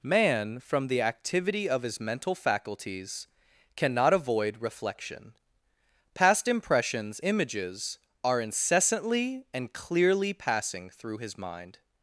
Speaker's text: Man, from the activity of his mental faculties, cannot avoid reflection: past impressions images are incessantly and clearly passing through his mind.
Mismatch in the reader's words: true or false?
false